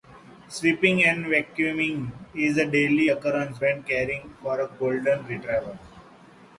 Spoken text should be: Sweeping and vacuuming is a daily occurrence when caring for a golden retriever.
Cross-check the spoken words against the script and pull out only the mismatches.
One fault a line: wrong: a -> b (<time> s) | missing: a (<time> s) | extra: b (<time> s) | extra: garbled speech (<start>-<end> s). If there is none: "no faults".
no faults